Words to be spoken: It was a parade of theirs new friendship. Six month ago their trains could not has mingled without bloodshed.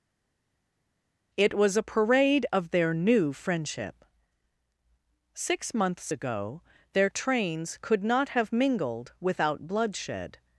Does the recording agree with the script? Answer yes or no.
no